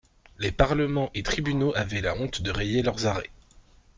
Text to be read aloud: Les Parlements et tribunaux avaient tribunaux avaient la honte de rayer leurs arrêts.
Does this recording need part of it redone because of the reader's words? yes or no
yes